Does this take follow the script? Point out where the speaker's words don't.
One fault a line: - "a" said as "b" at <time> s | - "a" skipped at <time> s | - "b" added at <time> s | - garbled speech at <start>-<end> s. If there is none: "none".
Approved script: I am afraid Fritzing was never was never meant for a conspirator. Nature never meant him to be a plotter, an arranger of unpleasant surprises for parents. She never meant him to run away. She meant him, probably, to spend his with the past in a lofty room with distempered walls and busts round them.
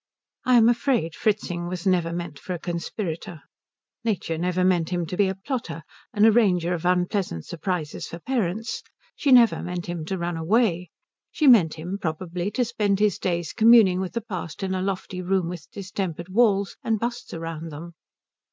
- "was never" skipped at 2.1 s
- "days communing" added at 13.2 s